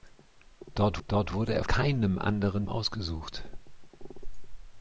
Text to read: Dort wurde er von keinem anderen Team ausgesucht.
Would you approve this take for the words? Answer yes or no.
no